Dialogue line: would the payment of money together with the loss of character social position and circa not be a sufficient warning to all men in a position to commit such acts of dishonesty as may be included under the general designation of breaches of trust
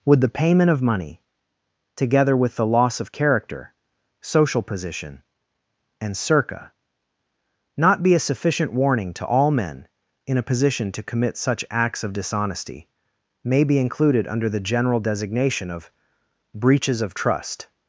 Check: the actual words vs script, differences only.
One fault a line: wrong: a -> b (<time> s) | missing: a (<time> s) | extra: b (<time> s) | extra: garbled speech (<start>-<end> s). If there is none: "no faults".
missing: as (12.9 s)